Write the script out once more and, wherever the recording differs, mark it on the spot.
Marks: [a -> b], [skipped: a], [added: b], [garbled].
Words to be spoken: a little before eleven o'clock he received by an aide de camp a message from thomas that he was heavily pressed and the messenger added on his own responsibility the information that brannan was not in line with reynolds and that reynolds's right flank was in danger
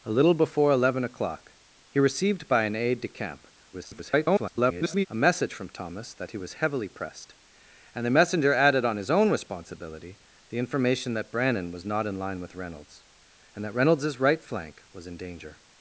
a little before eleven o'clock he received by an aide de camp [garbled] a message from thomas that he was heavily pressed and the messenger added on his own responsibility the information that brannan was not in line with reynolds and that reynolds's right flank was in danger